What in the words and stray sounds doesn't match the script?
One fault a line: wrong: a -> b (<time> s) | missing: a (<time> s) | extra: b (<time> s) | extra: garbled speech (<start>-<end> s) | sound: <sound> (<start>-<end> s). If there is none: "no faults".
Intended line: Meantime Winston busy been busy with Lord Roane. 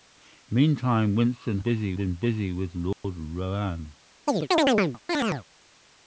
sound: dropout (2.9-3.0 s)
sound: chirp (4.3-5.4 s)